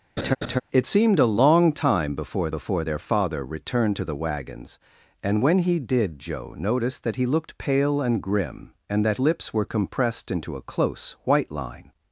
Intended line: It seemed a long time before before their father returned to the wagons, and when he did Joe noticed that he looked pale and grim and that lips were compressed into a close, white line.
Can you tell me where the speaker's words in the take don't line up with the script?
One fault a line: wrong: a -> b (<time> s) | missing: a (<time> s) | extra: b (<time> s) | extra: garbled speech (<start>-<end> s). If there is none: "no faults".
no faults